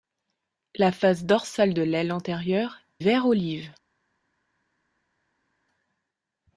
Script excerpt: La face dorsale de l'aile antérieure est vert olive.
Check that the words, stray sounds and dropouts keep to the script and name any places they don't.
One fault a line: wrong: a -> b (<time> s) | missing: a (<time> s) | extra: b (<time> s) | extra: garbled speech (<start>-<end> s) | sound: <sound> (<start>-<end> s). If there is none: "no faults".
missing: est (2.8 s)